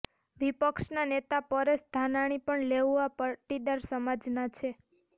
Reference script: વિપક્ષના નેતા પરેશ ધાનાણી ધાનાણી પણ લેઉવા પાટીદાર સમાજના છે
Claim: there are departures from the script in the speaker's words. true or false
true